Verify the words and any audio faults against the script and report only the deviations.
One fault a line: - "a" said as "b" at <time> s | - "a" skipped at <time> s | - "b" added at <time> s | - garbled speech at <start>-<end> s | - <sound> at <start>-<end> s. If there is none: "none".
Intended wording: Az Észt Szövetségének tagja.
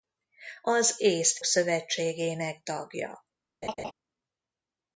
- laugh at 3.6-3.9 s